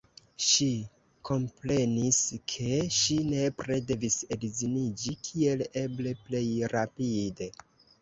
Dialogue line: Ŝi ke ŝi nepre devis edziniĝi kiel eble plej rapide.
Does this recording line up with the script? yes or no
no